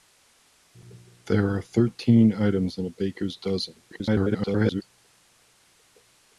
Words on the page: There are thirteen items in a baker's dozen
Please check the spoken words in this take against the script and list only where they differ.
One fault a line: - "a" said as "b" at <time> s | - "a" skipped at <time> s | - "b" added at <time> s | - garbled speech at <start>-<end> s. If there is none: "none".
- garbled speech at 3.9-4.8 s